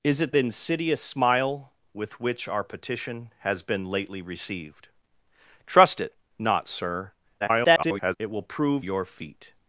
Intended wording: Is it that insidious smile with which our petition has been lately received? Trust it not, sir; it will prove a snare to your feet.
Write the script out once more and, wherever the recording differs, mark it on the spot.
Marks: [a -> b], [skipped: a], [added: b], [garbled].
Is it [skipped: that] insidious smile with which our petition has been lately received? Trust it not, sir; [garbled] it will prove [skipped: a snare to] your feet.